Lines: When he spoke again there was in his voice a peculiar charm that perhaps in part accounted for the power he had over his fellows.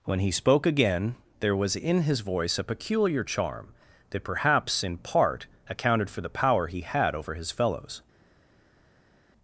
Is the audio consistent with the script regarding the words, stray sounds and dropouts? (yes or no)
yes